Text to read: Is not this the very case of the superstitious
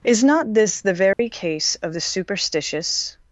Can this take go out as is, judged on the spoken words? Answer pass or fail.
pass